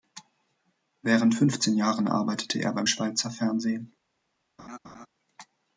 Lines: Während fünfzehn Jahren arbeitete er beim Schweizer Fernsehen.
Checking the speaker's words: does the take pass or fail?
pass